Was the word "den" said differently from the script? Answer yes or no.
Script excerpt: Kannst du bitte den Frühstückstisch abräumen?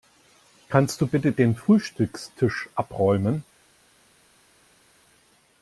no